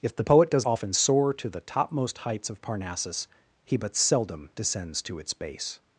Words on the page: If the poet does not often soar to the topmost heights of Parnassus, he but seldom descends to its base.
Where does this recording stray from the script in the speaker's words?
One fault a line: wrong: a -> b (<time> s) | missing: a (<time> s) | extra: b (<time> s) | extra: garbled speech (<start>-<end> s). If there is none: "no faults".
missing: not (0.6 s)